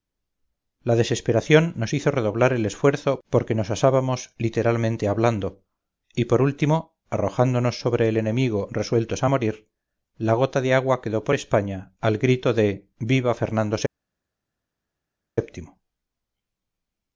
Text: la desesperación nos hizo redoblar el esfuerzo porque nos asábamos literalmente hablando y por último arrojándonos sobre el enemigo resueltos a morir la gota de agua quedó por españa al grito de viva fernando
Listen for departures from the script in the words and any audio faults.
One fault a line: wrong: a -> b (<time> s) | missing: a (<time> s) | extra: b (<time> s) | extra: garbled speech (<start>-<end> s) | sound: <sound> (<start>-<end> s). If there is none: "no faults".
no faults